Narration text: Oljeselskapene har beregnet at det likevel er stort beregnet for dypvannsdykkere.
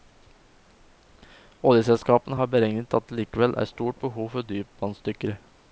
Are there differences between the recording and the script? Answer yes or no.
yes